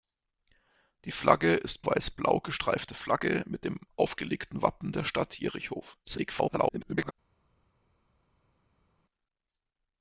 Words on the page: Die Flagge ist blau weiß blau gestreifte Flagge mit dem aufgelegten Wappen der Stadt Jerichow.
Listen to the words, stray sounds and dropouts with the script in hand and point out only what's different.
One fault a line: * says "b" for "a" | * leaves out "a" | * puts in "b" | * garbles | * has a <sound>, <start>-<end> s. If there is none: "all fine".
* leaves out "blau"
* garbles